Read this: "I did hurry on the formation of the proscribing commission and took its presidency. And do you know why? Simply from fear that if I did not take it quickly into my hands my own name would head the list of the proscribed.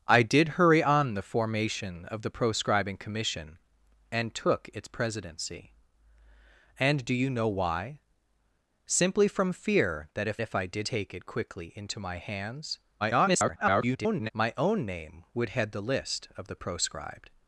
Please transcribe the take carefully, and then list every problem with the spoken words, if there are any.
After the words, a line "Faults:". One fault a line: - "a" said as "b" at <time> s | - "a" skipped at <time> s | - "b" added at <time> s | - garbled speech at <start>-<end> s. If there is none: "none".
"I did hurry on the formation of the proscribing commission and took its presidency. And do you know why? Simply from fear that if if I did take it quickly into my hands [garbled] my own name would head the list of the proscribed.
Faults:
- "if" added at 10.4 s
- "not" skipped at 10.9 s
- garbled speech at 13.0-14.3 s